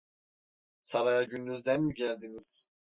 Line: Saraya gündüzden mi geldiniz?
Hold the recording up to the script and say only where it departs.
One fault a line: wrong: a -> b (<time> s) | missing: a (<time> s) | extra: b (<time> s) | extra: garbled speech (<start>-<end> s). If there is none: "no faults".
no faults